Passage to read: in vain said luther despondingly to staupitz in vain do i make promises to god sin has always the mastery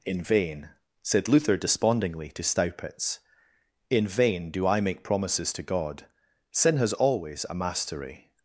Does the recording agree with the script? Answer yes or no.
no